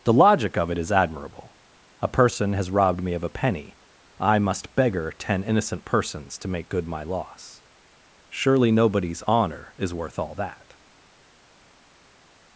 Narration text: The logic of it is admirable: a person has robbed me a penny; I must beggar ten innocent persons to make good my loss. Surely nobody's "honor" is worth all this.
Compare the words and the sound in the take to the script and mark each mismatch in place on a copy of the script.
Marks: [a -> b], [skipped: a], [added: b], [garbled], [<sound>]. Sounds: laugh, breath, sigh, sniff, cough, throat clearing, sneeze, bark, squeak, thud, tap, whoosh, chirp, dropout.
The logic of it is admirable: a person has robbed me [added: of] a penny; I must beggar ten innocent persons to make good my loss. Surely nobody's "honor" is worth all [this. -> that]